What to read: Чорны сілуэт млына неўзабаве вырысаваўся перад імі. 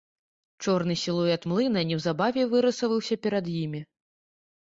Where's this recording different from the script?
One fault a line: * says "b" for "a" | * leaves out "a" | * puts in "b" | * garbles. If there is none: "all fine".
all fine